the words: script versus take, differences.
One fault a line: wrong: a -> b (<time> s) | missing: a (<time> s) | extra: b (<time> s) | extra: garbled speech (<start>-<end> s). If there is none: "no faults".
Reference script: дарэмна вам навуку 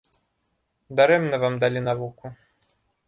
extra: далі (1.6 s)